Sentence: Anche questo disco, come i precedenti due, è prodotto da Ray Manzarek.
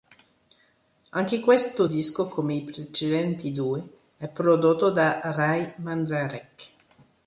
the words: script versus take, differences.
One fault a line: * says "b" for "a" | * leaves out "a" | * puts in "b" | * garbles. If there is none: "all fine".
all fine